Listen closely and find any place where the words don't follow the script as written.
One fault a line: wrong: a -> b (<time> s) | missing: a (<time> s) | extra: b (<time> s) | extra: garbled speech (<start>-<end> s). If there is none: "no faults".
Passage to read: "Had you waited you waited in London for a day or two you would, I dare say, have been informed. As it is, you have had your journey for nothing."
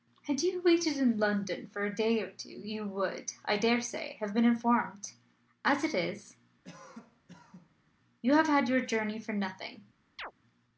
missing: you waited (1.0 s)